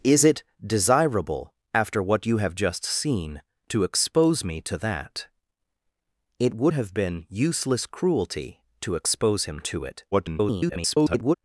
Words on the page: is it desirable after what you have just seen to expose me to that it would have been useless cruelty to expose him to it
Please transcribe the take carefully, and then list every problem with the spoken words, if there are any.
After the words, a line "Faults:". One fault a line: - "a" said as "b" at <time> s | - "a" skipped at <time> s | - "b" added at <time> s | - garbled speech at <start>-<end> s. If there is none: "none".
is it desirable after what you have just seen to expose me to that it would have been useless cruelty to expose him to it [garbled]
Faults:
- garbled speech at 10.1-11.4 s